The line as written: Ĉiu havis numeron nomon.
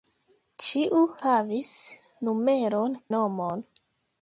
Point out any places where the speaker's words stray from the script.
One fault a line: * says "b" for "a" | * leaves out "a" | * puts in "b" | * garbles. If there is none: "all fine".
all fine